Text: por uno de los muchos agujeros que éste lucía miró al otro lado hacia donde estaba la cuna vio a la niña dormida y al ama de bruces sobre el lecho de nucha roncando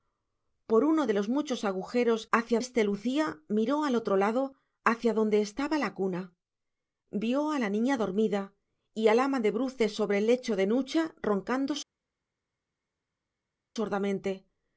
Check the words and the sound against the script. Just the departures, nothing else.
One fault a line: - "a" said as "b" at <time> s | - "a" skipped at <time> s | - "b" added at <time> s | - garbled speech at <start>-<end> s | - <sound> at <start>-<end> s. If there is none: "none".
- "que" said as "hacia" at 2.3 s